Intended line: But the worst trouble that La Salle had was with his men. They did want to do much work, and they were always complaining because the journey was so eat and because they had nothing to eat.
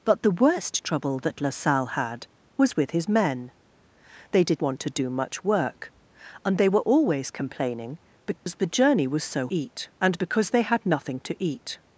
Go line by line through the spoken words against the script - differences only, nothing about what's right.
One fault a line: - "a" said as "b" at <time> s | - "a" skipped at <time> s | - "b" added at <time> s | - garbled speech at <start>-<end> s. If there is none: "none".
none